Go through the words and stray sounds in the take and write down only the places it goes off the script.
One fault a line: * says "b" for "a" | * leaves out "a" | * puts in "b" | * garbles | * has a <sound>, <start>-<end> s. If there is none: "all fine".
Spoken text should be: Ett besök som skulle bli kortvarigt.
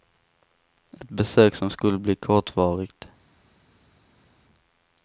all fine